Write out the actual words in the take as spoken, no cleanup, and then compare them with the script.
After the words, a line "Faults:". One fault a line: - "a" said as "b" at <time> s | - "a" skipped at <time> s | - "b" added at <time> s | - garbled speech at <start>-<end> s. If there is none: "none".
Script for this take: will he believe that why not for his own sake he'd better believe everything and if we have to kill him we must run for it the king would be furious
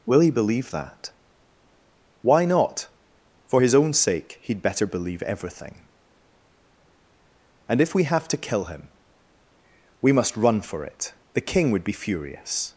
will he believe that why not for his own sake he'd better believe everything and if we have to kill him we must run for it the king would be furious
Faults:
none